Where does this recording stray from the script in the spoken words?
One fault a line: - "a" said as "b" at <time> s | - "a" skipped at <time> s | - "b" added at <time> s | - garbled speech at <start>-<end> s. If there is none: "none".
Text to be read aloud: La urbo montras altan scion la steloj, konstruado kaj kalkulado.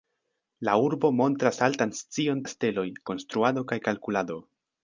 none